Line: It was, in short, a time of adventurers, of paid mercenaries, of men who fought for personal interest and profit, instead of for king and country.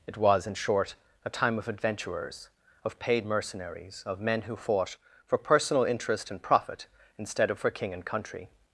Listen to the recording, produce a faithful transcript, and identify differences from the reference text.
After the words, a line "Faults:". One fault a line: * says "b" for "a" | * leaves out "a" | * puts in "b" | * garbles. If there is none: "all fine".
It was, in short, a time of adventurers, of paid mercenaries, of men who fought for personal interest and profit, instead of for king and country.
Faults:
all fine